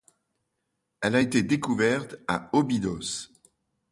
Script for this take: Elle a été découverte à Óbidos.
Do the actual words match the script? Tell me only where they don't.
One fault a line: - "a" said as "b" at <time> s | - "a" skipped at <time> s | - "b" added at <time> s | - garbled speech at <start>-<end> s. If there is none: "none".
none